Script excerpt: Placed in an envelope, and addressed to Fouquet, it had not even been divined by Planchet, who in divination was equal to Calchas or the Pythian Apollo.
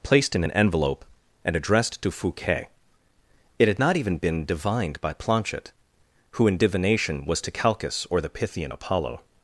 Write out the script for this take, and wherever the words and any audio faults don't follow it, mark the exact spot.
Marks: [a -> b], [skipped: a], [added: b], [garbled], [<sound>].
Placed in an envelope, and addressed to Fouquet, it had not even been divined by Planchet, who in divination was [skipped: equal] to Calchas or the Pythian Apollo.